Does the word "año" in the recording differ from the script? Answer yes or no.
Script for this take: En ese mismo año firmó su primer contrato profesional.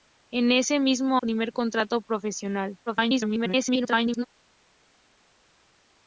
yes